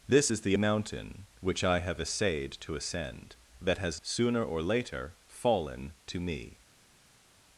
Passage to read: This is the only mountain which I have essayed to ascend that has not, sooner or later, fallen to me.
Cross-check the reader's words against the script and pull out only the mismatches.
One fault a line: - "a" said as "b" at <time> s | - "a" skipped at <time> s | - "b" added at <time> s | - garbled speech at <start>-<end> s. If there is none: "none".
- "only" skipped at 0.6 s
- "not" skipped at 4.0 s